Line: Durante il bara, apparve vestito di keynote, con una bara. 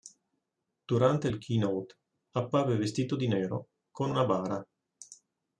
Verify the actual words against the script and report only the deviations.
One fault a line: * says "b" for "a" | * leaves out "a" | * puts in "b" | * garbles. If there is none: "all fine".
* says "keynote" for "bara"
* says "nero" for "keynote"